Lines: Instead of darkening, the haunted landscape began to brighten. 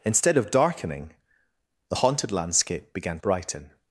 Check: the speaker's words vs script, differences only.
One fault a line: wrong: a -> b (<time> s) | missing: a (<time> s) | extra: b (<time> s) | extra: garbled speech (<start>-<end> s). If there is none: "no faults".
missing: to (3.2 s)